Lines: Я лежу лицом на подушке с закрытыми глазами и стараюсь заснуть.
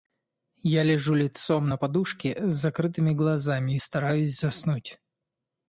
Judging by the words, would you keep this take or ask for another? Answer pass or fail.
pass